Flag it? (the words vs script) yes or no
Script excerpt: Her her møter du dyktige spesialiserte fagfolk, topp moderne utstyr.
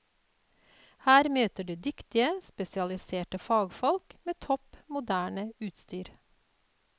yes